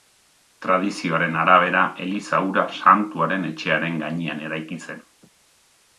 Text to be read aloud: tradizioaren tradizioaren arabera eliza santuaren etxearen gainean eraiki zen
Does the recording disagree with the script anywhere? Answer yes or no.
yes